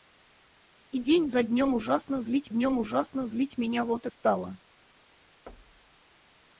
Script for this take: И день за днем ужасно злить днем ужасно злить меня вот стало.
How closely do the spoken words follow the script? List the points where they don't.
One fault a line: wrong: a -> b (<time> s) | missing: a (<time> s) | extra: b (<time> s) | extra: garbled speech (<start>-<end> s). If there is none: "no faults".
no faults